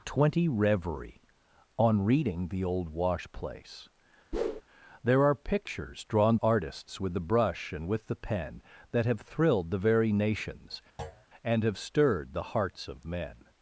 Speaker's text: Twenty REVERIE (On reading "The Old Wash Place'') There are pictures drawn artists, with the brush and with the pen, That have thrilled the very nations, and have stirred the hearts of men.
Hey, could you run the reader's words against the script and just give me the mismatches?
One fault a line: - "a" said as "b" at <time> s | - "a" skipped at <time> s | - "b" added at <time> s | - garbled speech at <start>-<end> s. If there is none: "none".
none